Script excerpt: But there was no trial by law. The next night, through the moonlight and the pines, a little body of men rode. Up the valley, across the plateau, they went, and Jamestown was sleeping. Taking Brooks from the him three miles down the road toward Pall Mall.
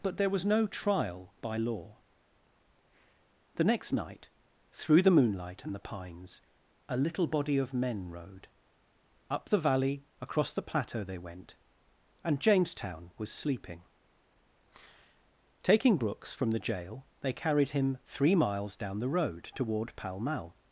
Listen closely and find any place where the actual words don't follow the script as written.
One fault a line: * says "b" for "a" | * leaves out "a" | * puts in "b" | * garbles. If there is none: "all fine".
* puts in "jail they carried"